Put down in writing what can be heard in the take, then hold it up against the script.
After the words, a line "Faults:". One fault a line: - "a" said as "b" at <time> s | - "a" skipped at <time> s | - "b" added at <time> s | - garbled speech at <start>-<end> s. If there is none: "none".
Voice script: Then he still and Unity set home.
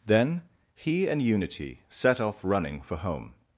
Then he and Unity set off running for home.
Faults:
- "still" skipped at 1.1 s
- "off running for" added at 2.2 s